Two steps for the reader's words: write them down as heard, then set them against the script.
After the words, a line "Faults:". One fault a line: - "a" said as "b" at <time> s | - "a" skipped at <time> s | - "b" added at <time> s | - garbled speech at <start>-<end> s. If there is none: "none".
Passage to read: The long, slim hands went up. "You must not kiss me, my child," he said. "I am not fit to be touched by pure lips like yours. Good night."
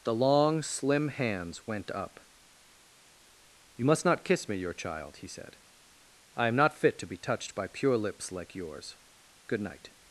The long, slim hands went up. "You must not kiss me, your child," he said. "I am not fit to be touched by pure lips like yours. Good night."
Faults:
- "my" said as "your" at 4.6 s